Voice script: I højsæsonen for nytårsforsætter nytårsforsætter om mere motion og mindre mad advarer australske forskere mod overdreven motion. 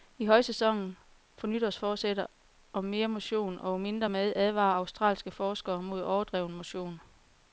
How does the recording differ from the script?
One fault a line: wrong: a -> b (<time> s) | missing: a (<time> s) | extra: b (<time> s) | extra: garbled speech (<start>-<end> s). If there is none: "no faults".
missing: nytårsforsætter (2.2 s)